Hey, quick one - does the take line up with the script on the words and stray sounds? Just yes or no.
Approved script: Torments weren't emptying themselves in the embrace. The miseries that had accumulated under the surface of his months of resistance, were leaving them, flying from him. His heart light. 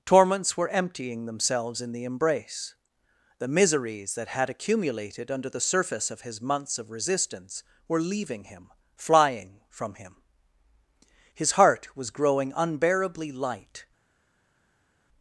no